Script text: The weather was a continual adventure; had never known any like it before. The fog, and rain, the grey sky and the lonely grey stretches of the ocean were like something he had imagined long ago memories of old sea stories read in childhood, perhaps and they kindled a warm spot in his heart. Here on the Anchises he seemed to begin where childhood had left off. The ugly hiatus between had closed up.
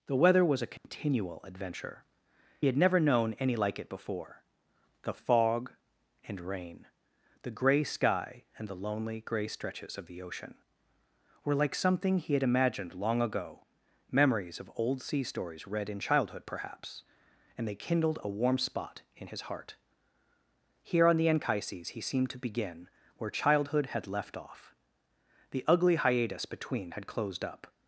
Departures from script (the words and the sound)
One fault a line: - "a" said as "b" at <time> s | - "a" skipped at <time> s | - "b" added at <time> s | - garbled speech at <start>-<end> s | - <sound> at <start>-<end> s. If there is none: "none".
- dropout at 0.8-0.8 s